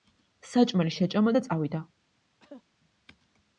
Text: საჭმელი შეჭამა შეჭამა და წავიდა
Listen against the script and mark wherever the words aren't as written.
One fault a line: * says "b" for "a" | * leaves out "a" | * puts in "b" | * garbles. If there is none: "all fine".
* leaves out "შეჭამა"